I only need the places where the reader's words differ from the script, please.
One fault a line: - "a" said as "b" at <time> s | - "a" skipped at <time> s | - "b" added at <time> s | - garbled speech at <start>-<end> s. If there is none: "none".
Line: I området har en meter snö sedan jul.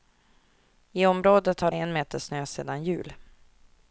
none